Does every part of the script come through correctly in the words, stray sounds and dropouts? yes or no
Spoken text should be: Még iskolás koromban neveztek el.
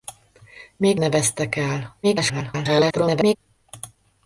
no